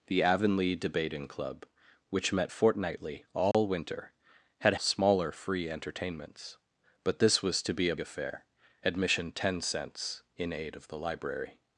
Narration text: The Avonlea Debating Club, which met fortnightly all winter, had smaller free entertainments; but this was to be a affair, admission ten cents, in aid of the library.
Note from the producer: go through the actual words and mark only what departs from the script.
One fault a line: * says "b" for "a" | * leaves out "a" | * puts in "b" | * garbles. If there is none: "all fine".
all fine